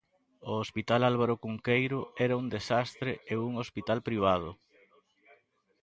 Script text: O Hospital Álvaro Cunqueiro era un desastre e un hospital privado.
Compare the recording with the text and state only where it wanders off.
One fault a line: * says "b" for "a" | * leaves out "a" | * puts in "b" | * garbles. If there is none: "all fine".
all fine